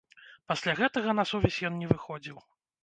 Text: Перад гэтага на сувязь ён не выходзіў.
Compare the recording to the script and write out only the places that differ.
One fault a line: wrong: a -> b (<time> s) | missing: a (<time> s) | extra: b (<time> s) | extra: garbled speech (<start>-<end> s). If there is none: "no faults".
wrong: Перад -> Пасля (0.5 s)